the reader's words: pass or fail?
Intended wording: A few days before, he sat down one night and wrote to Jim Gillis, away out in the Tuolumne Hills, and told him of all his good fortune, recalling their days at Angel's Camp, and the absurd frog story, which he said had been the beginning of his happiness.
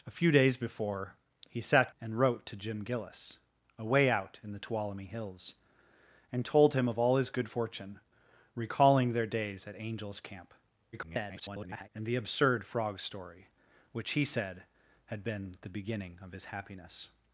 fail